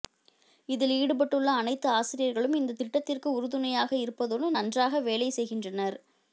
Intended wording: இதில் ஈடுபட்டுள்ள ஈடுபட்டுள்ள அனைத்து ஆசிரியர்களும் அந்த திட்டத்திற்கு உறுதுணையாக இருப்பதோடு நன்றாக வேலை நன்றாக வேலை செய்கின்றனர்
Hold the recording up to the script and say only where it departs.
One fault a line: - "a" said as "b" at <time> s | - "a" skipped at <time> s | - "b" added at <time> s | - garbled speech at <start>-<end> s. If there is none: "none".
- "ஈடுபட்டுள்ள" skipped at 1.5 s
- "அந்த" said as "இந்த" at 2.6 s
- "நன்றாக வேலை" skipped at 5.3 s